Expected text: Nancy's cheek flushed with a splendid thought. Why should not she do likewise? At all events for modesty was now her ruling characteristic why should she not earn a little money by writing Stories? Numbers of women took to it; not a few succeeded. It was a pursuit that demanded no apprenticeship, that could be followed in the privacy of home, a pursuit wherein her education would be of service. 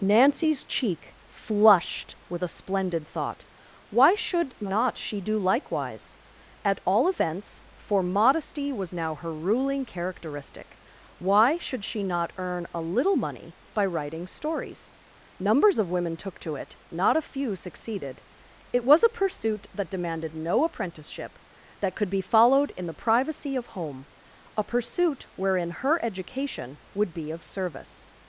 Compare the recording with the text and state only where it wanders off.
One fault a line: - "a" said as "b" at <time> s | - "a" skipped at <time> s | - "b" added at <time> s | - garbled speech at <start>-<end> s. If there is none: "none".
none